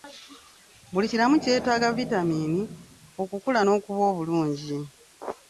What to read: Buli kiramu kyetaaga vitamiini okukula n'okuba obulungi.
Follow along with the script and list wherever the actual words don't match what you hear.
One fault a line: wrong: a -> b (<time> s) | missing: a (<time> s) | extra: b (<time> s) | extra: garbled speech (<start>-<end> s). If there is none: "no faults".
no faults